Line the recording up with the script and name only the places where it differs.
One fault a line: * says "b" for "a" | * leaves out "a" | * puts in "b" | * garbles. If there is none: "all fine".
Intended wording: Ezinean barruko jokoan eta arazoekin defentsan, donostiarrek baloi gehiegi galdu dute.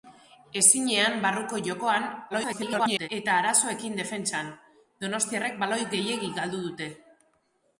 * garbles